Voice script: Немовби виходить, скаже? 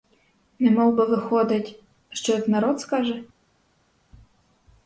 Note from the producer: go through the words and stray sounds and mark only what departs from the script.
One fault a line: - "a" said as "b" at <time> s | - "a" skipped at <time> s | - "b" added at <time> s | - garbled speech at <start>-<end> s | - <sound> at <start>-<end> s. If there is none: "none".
- "що як народ" added at 2.1 s